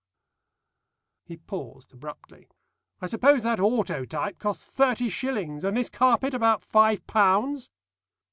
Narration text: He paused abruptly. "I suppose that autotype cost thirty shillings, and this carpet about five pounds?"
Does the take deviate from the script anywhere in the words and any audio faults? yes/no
no